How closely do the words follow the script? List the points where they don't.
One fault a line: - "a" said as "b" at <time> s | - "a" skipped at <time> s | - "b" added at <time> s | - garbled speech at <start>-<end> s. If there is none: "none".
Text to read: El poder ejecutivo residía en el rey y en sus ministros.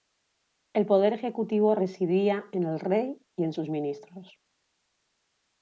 none